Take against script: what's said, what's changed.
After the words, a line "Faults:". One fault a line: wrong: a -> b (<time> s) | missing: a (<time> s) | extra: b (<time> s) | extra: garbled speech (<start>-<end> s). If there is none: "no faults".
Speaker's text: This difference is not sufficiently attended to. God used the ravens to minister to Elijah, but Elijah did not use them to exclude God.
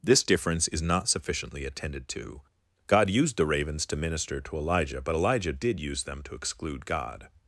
This difference is not sufficiently attended to. God used the ravens to minister to Elijah, but Elijah did use them to exclude God.
Faults:
missing: not (5.8 s)